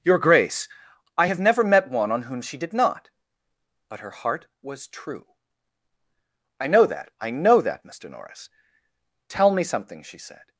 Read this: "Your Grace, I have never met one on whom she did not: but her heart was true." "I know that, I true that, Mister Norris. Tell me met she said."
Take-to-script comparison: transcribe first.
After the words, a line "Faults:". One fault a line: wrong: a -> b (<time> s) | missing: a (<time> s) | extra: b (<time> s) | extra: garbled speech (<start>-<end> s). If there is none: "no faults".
"Your Grace, I have never met one on whom she did not: but her heart was true." "I know that, I know that, Mister Norris. Tell me something she said."
Faults:
wrong: true -> know (7.3 s)
wrong: met -> something (9.6 s)